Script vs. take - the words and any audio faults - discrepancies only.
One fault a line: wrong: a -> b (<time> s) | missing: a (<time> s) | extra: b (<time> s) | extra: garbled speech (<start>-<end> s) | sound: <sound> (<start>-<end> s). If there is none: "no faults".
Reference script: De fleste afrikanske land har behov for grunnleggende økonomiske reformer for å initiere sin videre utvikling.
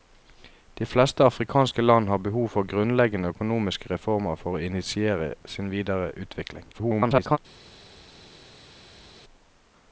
extra: garbled speech (6.7-7.4 s)